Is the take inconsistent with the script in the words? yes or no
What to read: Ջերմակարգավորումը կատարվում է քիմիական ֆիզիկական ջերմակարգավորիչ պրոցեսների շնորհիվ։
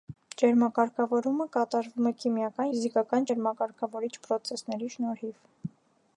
no